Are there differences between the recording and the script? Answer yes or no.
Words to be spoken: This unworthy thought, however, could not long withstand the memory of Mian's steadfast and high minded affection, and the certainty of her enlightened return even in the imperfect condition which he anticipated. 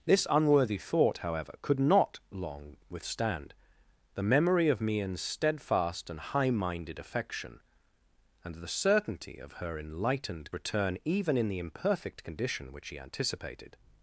no